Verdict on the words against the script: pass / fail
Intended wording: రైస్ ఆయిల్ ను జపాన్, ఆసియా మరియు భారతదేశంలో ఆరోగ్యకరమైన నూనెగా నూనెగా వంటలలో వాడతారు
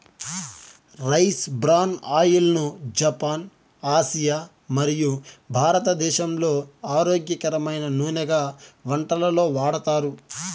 fail